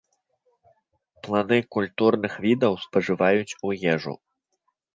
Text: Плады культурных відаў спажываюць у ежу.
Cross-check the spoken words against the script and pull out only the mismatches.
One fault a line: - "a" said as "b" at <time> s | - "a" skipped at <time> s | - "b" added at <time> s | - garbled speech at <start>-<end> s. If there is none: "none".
none